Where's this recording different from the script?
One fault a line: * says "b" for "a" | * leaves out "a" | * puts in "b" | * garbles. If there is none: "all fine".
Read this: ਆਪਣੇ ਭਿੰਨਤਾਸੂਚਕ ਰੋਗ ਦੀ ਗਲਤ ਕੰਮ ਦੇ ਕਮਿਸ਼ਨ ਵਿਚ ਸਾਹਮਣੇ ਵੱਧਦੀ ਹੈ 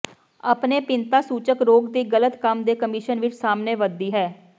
all fine